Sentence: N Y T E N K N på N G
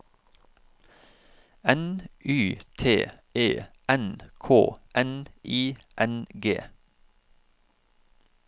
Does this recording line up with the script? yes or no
no